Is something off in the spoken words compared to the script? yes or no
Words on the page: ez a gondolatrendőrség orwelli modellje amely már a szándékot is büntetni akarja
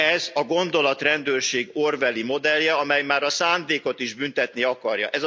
no